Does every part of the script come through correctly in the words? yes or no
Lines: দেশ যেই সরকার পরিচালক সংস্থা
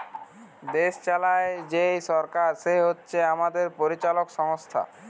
no